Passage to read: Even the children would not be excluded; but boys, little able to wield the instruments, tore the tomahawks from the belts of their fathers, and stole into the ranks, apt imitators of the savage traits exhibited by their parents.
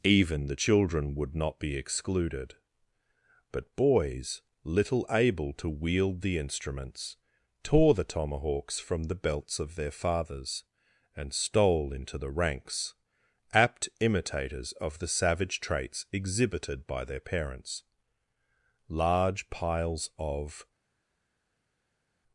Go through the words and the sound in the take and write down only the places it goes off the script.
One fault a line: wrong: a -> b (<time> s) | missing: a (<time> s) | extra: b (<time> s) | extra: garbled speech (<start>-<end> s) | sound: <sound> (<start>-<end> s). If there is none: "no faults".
extra: Large piles of (18.9 s)